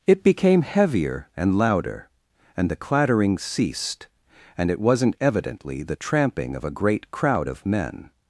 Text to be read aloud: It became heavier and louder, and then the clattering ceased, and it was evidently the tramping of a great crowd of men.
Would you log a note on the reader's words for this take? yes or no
yes